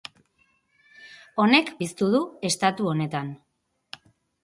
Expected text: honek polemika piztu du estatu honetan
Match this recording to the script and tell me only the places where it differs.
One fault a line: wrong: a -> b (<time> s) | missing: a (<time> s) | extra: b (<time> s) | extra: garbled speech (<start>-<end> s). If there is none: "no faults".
missing: polemika (1.7 s)